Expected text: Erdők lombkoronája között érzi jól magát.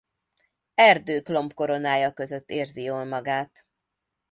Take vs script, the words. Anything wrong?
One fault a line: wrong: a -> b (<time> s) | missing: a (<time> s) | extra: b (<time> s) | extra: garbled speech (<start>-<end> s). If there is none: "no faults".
no faults